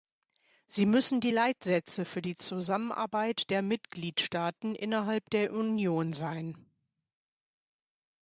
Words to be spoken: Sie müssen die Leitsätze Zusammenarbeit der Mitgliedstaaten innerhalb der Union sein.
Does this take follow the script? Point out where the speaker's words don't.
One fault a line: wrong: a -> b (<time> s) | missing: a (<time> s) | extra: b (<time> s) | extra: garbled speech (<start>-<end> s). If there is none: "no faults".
extra: für die (2.0 s)